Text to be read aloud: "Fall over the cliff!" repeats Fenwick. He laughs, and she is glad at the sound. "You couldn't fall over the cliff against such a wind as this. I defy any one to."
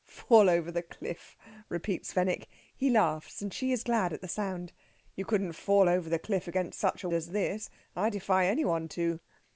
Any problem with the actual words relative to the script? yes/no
yes